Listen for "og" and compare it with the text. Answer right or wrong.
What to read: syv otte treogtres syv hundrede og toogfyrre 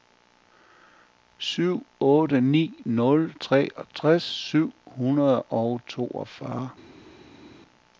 right